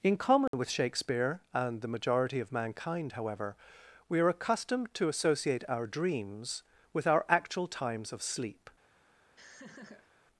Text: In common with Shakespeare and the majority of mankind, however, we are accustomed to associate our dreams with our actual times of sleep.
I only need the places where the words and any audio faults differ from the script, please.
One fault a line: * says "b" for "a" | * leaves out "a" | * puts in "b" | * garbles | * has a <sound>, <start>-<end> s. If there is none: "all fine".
* has a dropout, 0.5-0.5 s
* has a laugh, 9.4-10.1 s